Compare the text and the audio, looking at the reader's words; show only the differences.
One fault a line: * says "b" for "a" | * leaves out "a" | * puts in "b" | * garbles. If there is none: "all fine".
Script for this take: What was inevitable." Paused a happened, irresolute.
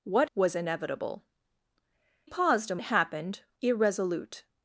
all fine